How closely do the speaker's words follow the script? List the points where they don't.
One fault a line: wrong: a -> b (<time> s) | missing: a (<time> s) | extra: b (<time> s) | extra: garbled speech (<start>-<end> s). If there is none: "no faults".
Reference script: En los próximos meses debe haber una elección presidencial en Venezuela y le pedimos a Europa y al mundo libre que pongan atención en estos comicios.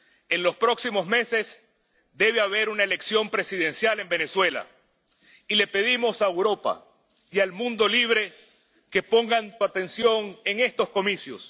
no faults